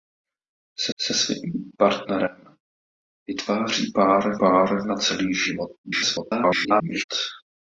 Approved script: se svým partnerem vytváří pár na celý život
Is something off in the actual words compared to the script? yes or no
yes